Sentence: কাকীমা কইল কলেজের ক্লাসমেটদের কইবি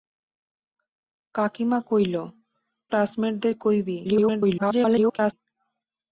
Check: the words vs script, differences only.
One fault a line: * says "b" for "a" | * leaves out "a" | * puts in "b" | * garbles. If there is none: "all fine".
* leaves out "কলেজের"
* garbles